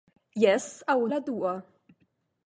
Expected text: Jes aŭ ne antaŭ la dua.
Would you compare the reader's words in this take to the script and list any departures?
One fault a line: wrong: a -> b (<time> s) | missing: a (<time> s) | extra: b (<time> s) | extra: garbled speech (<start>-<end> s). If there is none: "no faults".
missing: ne antaŭ (0.9 s)